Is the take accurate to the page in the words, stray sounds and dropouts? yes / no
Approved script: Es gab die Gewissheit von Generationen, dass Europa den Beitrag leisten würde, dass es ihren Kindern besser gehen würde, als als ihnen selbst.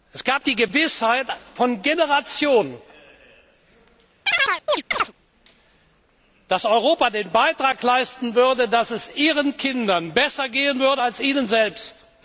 no